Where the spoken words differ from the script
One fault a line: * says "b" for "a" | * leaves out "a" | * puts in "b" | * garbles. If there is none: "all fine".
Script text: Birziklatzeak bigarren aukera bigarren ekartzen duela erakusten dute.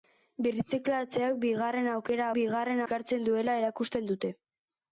all fine